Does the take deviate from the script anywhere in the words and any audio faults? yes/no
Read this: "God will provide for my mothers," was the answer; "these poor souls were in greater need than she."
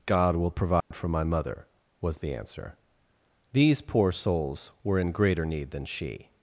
yes